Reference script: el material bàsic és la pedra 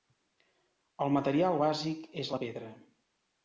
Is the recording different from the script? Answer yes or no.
no